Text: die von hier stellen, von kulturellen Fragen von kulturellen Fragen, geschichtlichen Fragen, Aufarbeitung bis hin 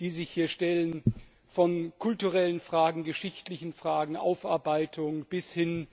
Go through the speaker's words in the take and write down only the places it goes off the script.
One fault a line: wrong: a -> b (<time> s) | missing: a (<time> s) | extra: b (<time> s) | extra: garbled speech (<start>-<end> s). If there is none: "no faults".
wrong: von -> sich (0.1 s)
missing: von kulturellen Fragen (3.0 s)